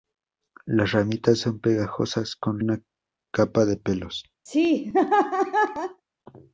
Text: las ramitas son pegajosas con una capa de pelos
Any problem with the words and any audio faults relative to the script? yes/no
yes